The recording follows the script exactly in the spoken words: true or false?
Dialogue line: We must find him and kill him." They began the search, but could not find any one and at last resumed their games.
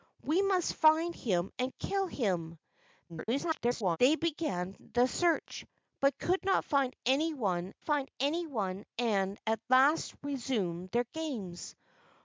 false